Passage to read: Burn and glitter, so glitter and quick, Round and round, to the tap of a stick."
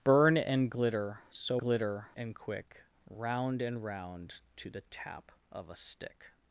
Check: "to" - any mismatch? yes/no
no